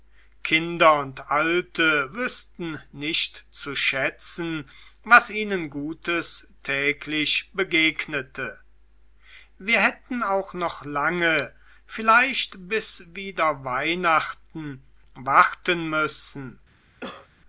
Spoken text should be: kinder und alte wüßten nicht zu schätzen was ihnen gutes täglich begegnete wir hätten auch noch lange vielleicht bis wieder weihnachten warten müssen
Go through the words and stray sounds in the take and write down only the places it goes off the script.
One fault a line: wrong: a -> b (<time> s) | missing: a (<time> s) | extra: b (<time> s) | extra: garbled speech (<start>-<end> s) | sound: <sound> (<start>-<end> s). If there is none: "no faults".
sound: cough (17.0-17.3 s)